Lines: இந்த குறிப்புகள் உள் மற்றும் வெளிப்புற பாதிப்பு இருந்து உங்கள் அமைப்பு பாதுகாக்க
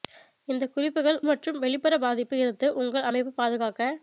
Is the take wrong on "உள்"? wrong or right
wrong